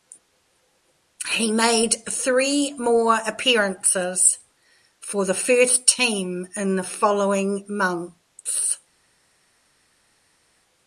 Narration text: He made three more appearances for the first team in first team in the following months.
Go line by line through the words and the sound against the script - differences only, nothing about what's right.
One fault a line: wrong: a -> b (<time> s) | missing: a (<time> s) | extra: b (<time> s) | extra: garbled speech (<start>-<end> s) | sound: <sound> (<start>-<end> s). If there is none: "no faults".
missing: first team in (6.8 s)